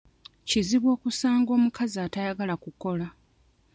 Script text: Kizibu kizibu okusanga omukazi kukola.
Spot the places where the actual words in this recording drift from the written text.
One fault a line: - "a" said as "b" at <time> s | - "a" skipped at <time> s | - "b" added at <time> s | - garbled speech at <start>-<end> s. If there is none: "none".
- "kizibu" skipped at 0.9 s
- "atayagala" added at 2.0 s